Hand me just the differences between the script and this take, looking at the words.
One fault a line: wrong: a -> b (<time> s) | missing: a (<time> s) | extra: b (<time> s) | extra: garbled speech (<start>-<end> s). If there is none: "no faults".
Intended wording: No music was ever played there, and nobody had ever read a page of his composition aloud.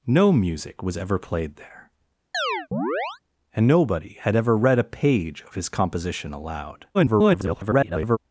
extra: garbled speech (6.9-8.2 s)